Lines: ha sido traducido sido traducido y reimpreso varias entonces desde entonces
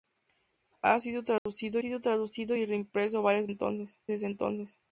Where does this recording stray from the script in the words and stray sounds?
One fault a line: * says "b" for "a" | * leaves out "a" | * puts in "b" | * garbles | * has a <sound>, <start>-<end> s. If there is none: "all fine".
* has a dropout, 1.4-1.5 s